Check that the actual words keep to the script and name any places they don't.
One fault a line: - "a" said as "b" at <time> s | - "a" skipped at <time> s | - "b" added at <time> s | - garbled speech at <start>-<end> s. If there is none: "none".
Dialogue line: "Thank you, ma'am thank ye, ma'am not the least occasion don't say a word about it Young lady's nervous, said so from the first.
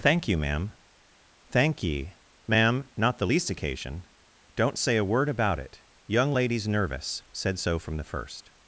none